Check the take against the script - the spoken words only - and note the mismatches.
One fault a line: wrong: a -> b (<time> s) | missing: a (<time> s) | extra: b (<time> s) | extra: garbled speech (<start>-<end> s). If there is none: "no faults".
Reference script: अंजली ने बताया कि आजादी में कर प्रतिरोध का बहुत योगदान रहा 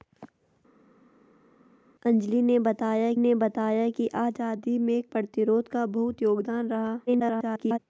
extra: ने बताया (3.2 s)
missing: कर (5.0 s)
extra: garbled speech (7.1-7.8 s)